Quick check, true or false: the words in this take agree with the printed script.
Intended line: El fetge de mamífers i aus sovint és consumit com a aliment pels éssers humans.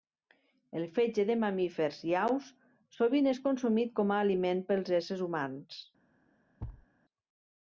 true